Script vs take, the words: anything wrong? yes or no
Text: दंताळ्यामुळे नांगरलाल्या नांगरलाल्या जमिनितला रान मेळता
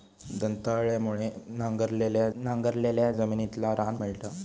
no